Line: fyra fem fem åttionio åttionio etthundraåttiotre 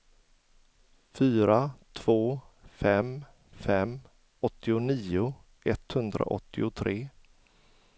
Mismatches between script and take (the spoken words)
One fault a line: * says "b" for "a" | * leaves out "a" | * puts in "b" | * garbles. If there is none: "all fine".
* puts in "två"
* leaves out "åttionio"